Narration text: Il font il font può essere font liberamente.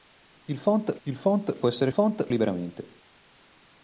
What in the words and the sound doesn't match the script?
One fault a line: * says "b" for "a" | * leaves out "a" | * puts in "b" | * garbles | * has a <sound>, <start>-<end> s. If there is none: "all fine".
all fine